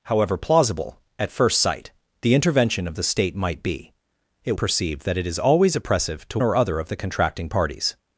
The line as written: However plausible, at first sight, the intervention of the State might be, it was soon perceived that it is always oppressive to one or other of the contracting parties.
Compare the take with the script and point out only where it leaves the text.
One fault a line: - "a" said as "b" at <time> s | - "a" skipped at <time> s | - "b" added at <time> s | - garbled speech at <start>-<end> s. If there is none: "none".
- "was soon" skipped at 4.5 s
- "one" skipped at 6.4 s